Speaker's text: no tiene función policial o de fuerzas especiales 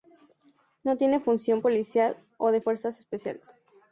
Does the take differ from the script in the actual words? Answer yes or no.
no